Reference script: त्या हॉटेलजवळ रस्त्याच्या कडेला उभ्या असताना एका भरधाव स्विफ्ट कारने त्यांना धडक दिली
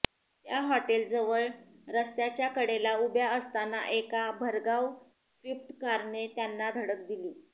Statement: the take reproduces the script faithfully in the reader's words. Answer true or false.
true